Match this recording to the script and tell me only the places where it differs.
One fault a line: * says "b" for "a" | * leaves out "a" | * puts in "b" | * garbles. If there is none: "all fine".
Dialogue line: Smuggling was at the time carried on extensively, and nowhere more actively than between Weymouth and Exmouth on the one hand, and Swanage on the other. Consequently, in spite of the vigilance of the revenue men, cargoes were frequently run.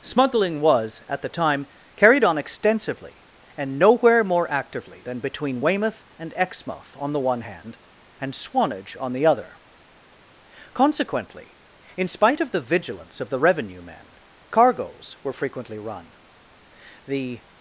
* puts in "The"